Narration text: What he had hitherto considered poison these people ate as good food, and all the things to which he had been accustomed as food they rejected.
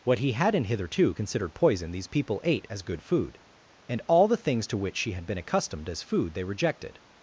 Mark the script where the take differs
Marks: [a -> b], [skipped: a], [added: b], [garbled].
What he [had -> hadn't] hitherto considered poison these people ate as good food, and all the things to which [he -> she] had been accustomed as food they rejected.